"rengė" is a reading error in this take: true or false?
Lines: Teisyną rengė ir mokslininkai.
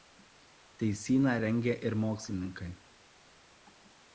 false